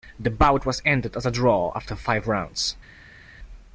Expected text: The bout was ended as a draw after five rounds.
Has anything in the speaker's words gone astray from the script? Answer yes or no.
no